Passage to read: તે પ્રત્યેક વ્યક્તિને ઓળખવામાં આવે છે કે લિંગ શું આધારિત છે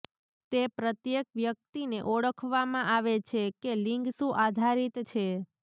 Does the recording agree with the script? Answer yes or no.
yes